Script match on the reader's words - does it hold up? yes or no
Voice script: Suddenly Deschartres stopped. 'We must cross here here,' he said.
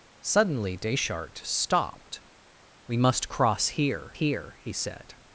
yes